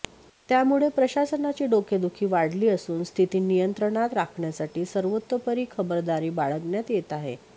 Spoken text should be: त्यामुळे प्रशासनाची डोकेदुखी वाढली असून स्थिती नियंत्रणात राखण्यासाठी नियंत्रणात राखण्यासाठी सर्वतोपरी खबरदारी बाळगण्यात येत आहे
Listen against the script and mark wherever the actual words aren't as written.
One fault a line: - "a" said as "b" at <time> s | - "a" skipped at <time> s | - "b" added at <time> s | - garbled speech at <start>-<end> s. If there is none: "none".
- "नियंत्रणात राखण्यासाठी" skipped at 4.8 s